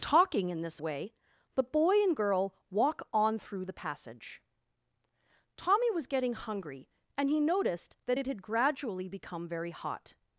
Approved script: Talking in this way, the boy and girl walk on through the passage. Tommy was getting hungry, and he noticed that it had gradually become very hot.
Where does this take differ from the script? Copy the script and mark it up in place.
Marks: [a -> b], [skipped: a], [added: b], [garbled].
Talking in this way, the boy and girl walk on through the passage. Tommy was getting hungry, and he noticed that it had gradually become very hot.